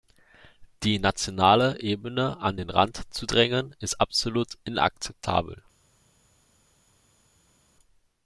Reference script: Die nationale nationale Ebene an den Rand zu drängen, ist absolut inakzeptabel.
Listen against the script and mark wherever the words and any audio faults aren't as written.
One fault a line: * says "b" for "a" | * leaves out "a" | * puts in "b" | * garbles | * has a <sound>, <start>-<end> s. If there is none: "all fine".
* leaves out "nationale"